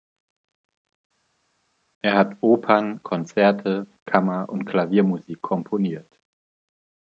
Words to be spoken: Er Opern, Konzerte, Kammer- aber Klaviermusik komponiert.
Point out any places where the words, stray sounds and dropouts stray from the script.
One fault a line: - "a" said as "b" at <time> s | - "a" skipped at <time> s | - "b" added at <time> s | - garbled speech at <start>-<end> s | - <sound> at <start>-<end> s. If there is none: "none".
- "hat" added at 2.1 s
- "aber" said as "und" at 4.5 s